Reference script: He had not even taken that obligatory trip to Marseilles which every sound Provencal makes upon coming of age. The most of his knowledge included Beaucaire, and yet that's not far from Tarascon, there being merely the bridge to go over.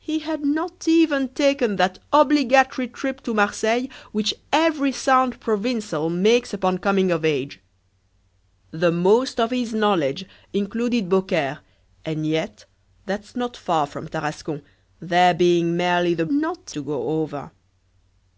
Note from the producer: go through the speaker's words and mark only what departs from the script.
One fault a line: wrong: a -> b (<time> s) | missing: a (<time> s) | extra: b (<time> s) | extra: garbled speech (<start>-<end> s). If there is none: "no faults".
wrong: bridge -> not (16.3 s)